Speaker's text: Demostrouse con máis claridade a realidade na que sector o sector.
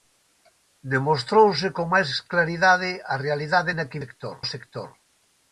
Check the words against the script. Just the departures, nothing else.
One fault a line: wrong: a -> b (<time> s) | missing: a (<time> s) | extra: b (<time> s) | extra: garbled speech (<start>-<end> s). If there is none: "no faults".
no faults